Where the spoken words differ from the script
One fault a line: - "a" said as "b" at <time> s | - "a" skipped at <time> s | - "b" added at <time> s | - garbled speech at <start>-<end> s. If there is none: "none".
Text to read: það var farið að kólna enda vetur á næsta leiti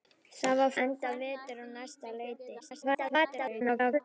- "farið að kólna" skipped at 0.7 s
- garbled speech at 2.6-4.0 s